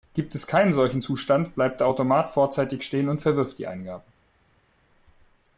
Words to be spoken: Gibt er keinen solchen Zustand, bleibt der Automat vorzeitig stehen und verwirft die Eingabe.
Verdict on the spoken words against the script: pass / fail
fail